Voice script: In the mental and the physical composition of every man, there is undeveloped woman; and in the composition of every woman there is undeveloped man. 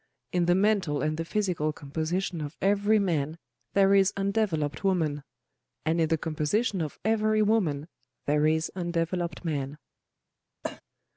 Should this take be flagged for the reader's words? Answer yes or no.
no